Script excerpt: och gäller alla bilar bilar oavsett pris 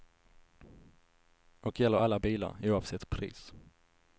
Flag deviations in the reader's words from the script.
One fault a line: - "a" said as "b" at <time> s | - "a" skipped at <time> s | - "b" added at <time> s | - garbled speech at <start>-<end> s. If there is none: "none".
- "bilar" skipped at 2.6 s